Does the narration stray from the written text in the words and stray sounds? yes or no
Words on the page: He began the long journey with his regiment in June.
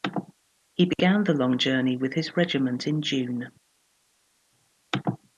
no